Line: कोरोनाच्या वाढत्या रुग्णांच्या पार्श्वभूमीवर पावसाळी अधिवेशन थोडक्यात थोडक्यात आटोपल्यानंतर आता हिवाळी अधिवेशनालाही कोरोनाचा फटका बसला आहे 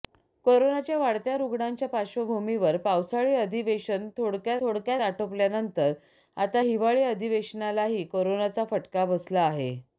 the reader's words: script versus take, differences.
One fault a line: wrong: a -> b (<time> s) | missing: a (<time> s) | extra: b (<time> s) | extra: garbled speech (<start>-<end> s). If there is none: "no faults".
no faults